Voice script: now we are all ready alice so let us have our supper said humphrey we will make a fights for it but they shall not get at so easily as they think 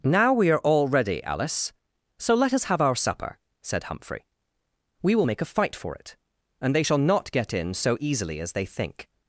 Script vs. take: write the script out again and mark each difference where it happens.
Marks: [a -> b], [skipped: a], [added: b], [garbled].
now we are all ready alice so let us have our supper said humphrey we will make a [fights -> fight] for it [but -> and] they shall not get [at -> in] so easily as they think